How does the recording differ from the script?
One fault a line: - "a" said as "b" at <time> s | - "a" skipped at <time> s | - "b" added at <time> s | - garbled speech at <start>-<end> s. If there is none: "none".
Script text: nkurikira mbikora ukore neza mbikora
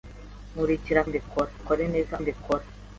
none